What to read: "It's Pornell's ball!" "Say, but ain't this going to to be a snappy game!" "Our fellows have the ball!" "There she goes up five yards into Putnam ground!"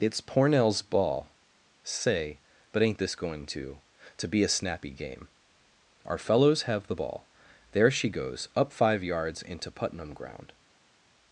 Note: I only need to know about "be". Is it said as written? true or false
true